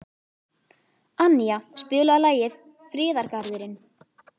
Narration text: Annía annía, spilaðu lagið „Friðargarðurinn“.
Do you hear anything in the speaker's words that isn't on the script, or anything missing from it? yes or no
yes